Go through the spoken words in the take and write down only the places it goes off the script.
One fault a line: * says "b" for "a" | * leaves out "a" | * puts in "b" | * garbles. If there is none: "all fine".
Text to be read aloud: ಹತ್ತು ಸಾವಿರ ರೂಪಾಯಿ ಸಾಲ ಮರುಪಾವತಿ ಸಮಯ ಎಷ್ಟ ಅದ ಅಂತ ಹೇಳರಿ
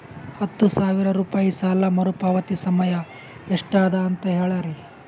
all fine